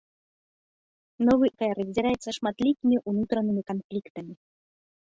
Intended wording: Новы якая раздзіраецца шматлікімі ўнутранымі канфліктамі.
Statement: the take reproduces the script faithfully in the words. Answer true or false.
true